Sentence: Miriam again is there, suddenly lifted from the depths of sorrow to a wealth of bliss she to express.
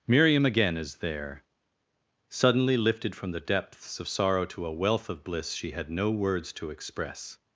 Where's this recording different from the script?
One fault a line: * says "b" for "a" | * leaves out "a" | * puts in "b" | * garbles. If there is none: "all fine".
* puts in "had no words"